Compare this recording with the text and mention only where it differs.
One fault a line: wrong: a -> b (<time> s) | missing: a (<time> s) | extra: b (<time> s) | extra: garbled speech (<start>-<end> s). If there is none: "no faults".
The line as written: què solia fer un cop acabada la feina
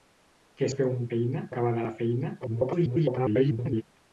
missing: solia (0.7 s)
wrong: cop -> feina (1.1 s)
extra: garbled speech (2.4-3.8 s)